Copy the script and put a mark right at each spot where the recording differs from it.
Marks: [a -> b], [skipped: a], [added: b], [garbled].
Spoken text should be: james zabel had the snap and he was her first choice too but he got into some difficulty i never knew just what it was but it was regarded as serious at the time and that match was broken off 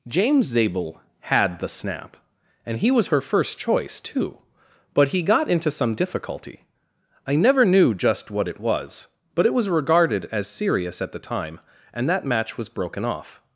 james zabel had the snap and he was her first choice too but he got into some difficulty i never knew just what it was but it was regarded as serious at the time and that match was broken off